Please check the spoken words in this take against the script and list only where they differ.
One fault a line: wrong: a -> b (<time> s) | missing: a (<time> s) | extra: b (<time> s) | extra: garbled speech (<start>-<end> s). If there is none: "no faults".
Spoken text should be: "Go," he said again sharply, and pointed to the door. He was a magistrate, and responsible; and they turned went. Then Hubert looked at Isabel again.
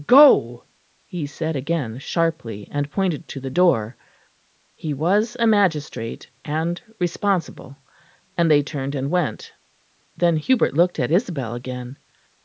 extra: and (8.9 s)